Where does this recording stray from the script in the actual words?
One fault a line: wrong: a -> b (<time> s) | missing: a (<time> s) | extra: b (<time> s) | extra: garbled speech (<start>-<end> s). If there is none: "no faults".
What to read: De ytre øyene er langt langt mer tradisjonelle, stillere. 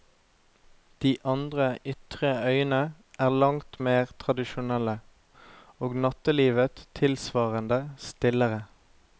extra: andre (1.3 s)
missing: langt (3.8 s)
extra: og nattelivet tilsvarende (5.8 s)